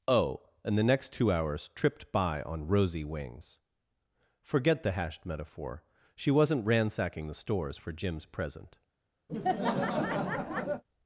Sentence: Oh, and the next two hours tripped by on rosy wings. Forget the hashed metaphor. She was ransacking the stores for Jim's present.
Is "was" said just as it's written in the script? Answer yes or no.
no